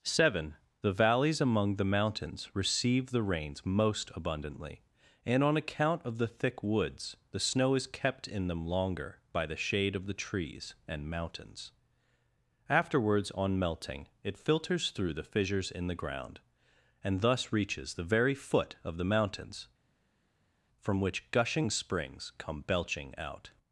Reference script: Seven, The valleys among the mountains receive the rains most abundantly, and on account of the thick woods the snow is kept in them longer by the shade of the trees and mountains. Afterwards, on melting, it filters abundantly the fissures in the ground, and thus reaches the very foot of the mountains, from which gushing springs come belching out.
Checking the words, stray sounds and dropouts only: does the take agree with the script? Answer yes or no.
no